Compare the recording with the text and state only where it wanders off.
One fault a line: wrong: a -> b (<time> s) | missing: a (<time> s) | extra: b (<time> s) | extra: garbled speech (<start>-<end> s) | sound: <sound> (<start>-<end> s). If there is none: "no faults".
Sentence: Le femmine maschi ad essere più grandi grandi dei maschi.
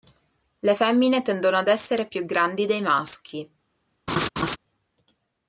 wrong: maschi -> tendono (1.2 s)
missing: grandi (2.7 s)
sound: laugh (4.1-4.6 s)